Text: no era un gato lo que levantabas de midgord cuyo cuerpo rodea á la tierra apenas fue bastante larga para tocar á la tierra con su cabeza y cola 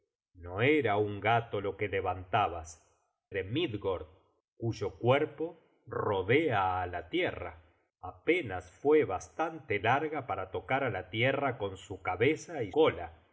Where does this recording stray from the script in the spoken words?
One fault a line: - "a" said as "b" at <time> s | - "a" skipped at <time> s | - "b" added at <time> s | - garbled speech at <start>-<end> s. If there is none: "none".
none